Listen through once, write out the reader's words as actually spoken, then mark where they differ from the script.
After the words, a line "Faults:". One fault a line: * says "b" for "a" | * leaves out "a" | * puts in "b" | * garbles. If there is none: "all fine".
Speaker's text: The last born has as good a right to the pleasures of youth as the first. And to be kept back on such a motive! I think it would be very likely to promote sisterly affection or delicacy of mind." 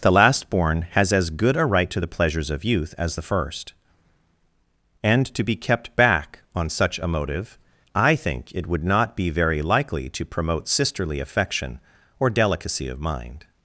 The last born has as good a right to the pleasures of youth as the first. And to be kept back on such a motive! I think it would not be very likely to promote sisterly affection or delicacy of mind."
Faults:
* puts in "not"